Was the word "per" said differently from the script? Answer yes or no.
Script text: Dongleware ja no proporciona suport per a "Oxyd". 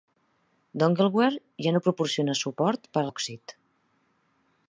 no